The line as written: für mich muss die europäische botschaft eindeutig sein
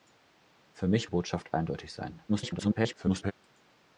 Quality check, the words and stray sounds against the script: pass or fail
fail